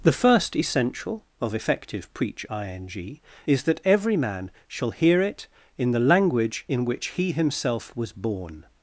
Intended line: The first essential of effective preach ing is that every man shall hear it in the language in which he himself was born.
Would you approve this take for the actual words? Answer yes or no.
yes